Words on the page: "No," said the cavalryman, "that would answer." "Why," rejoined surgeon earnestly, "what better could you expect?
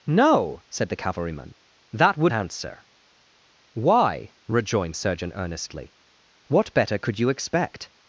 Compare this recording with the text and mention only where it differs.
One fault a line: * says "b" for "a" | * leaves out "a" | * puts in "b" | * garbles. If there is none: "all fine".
all fine